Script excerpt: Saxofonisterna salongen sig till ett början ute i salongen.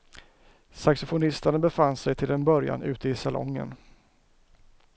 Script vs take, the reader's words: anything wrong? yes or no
yes